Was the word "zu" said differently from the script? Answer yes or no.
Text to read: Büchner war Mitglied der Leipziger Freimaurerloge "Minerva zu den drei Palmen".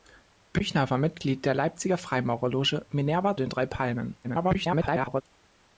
yes